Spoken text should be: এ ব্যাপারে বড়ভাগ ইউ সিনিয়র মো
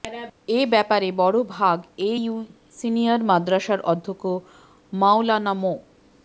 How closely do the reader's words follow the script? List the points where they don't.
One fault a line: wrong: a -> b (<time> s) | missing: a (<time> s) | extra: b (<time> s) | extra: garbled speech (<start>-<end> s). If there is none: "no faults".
extra: এ (2.0 s)
extra: মাদ্রাসার অধ্যক্ষ মাওলানা (3.2 s)